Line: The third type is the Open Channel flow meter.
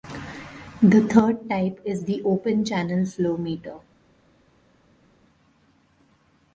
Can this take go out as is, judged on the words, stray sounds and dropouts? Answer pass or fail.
pass